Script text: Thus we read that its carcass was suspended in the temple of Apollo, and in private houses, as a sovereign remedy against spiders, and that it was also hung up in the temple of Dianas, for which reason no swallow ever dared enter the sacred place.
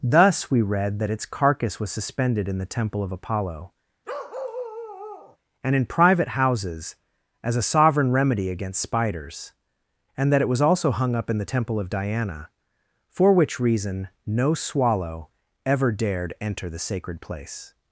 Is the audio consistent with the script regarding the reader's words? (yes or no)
no